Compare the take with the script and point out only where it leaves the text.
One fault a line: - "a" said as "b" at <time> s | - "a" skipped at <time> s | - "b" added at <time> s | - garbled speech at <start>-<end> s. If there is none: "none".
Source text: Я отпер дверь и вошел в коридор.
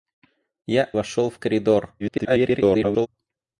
- "отпер дверь и" skipped at 0.9 s
- garbled speech at 2.0-3.1 s